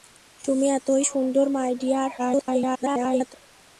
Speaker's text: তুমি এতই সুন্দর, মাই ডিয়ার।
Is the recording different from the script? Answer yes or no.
yes